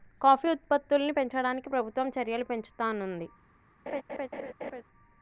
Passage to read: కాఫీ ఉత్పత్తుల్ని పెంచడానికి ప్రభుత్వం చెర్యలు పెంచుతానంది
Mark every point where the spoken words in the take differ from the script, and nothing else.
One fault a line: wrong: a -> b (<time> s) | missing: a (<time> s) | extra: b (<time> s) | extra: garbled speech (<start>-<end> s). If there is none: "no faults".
no faults